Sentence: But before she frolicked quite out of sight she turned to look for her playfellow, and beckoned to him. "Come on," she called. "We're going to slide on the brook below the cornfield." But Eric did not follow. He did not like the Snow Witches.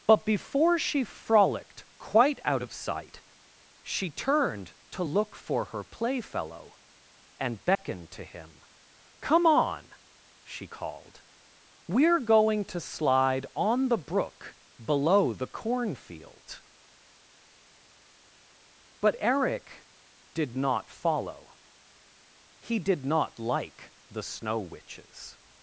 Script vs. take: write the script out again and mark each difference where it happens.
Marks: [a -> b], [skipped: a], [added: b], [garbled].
But before she frolicked quite out of sight she turned to look for her playfellow, and beckoned to him. "Come on," she called. "We're going to slide on the brook below the cornfield." But Eric did not follow. He did not like the Snow Witches.